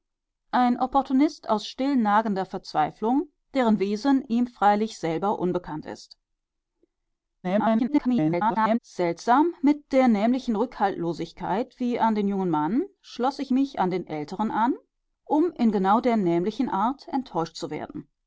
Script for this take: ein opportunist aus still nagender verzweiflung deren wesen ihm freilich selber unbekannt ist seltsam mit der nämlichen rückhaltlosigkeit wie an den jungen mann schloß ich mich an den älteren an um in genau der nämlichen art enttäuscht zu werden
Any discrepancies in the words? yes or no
yes